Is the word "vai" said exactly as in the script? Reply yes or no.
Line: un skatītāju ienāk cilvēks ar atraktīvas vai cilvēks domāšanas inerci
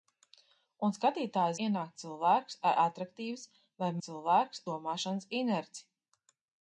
yes